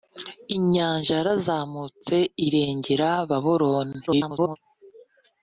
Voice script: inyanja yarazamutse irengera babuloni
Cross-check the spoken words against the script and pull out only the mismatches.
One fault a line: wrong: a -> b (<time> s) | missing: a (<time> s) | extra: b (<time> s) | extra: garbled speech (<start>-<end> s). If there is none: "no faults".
extra: garbled speech (4.1-4.6 s)